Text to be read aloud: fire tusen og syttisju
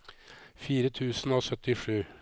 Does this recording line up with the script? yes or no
yes